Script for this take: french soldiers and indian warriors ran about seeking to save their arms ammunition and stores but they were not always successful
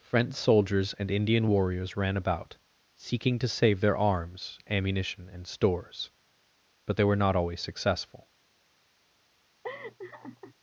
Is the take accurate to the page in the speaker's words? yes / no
yes